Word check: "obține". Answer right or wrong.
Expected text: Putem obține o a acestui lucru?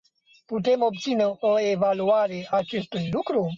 right